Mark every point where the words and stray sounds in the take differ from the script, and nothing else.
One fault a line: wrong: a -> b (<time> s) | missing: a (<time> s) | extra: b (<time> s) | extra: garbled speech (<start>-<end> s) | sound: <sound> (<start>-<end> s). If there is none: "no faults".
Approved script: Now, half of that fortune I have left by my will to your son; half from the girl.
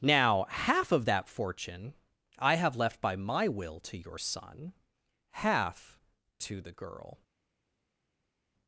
wrong: from -> to (6.4 s)